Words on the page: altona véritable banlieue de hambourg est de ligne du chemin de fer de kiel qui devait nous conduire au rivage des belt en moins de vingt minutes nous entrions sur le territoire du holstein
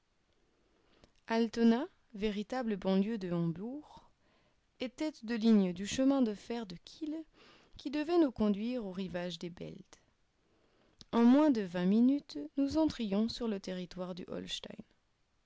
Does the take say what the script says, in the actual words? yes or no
no